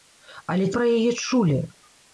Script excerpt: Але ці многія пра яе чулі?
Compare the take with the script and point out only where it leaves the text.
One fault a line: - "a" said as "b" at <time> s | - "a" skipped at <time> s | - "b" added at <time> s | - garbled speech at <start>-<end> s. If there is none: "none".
- "ці многія" skipped at 0.7 s